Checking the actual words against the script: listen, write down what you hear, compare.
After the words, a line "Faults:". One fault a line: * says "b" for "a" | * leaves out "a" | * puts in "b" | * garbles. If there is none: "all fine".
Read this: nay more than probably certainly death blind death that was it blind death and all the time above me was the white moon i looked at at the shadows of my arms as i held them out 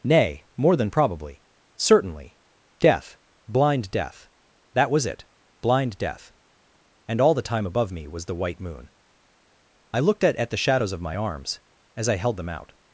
nay more than probably certainly death blind death that was it blind death and all the time above me was the white moon i looked at at the shadows of my arms as i held them out
Faults:
all fine